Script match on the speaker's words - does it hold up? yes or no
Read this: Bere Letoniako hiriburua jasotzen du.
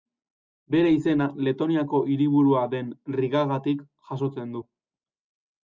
no